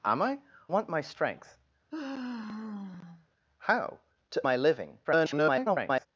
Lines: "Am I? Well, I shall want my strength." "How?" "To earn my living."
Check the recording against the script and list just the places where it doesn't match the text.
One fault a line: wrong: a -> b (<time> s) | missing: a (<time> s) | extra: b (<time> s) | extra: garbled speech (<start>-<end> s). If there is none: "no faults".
missing: Well I shall (0.4 s)
missing: earn (4.4 s)
extra: garbled speech (5.0-6.1 s)